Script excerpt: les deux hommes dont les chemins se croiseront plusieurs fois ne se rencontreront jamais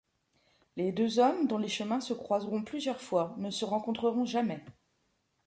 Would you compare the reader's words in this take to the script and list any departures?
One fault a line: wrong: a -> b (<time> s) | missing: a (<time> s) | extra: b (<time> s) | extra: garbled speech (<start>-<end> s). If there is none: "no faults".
no faults